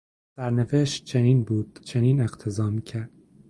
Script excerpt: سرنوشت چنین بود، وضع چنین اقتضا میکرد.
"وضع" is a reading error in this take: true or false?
true